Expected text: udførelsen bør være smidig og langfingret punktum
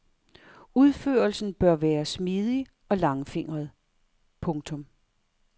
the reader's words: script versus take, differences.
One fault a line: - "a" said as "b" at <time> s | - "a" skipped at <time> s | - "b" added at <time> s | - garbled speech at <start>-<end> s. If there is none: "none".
none